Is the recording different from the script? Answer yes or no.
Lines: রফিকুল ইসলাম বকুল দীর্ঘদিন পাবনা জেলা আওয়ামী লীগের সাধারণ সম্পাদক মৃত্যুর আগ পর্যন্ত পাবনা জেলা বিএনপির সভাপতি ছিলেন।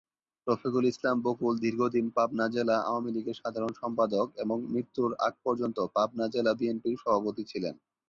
yes